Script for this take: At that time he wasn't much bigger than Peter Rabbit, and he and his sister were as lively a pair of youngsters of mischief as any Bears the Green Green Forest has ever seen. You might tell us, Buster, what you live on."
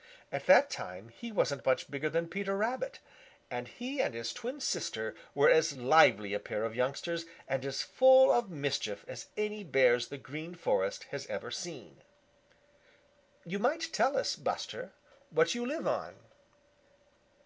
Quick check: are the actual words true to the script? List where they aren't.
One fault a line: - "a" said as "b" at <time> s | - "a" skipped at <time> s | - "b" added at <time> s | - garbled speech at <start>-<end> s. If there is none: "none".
- "twin" added at 4.3 s
- "and as full" added at 7.5 s
- "Green" skipped at 10.5 s